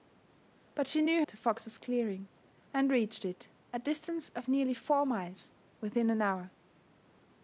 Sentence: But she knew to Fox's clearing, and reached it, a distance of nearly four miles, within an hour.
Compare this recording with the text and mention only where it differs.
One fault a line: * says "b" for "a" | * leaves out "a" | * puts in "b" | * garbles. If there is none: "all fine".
all fine